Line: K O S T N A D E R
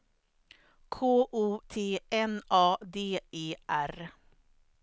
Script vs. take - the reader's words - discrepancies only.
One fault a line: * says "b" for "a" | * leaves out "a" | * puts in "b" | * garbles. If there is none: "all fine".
* leaves out "S"